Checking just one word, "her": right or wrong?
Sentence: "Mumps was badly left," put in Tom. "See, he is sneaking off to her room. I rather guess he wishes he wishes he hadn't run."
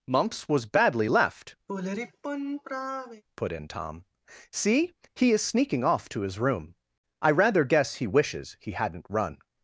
wrong